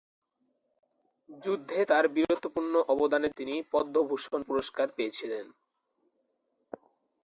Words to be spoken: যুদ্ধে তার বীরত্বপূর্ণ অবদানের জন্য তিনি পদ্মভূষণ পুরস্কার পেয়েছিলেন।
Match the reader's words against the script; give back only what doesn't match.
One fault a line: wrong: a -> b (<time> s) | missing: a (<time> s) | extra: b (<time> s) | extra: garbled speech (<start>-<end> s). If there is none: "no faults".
missing: জন্য (3.3 s)